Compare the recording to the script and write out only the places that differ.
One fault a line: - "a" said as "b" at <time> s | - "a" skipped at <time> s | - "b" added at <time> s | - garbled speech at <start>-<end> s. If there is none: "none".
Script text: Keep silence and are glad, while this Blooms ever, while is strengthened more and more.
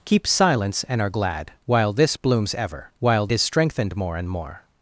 none